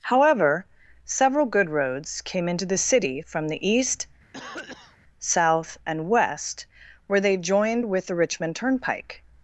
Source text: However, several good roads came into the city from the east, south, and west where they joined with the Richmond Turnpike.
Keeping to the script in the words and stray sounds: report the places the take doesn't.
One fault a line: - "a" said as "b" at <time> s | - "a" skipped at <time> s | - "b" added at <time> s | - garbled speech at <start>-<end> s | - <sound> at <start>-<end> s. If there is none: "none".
- cough at 4.3-5.0 s